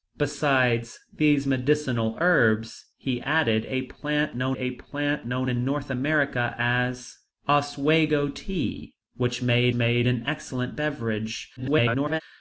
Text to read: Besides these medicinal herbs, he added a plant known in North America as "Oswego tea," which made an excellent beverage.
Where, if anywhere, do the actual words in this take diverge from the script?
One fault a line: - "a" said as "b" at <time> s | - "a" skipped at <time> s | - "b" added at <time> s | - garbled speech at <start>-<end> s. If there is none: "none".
- "a plant known" added at 4.6 s
- "made" added at 9.7 s
- garbled speech at 11.6-12.2 s